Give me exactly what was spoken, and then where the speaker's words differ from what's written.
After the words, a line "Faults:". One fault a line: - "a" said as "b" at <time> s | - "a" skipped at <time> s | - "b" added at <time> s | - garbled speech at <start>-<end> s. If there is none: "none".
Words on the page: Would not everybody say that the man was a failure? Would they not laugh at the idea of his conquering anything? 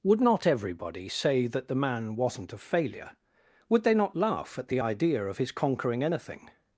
Would not everybody say that the man wasn't a failure? Would they not laugh at the idea of his conquering anything?
Faults:
- "was" said as "wasn't" at 2.1 s